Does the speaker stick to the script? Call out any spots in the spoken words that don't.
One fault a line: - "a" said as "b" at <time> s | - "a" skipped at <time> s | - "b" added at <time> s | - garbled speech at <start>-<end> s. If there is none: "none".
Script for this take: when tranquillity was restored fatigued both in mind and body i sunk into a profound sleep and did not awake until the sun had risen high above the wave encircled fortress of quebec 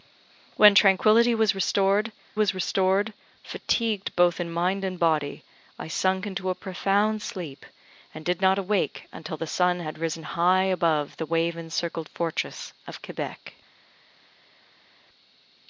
- "was restored" added at 2.3 s